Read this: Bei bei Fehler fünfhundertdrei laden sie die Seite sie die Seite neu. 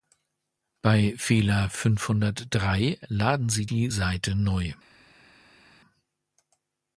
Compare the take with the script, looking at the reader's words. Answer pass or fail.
fail